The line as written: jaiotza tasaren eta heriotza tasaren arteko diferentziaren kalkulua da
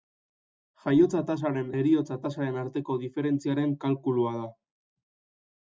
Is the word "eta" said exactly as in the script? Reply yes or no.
no